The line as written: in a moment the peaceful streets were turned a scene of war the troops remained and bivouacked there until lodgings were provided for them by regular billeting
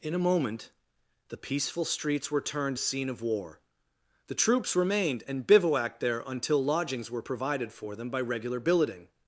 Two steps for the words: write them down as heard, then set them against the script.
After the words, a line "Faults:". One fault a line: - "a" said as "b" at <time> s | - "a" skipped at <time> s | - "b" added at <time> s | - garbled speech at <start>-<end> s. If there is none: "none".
in a moment the peaceful streets were turned a scene of war the troops remained and bivouacked there until lodgings were provided for them by regular billeting
Faults:
none